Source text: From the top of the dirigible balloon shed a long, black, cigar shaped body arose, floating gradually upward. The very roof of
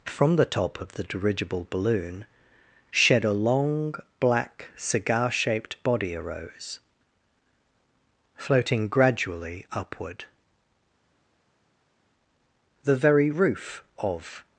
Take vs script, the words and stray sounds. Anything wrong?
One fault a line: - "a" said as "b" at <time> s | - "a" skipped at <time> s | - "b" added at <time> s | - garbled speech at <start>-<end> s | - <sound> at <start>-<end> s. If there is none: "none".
none